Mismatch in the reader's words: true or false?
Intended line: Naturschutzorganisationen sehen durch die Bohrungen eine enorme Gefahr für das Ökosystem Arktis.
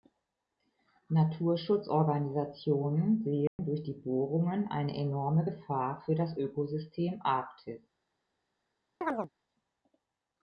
false